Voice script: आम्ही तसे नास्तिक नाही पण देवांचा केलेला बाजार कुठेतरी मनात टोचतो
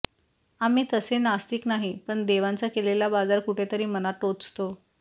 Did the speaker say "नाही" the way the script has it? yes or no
yes